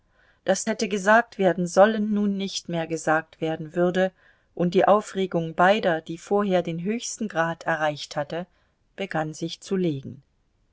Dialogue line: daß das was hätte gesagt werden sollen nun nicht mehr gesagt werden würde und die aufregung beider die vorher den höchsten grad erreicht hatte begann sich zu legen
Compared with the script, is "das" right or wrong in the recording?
wrong